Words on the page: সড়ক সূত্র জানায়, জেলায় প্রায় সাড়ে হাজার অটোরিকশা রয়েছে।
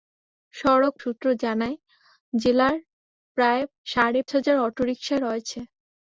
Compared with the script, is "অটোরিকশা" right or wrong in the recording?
right